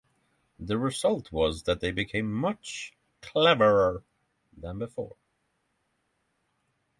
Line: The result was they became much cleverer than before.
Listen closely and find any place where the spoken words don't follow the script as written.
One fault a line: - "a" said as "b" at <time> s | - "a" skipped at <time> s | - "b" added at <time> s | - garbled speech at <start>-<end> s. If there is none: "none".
- "that" added at 1.6 s